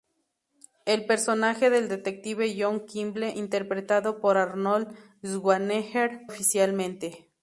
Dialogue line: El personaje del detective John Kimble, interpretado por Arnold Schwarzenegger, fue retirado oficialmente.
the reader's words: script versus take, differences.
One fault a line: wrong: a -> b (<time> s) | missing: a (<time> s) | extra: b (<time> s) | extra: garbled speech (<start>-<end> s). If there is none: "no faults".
missing: fue retirado (6.2 s)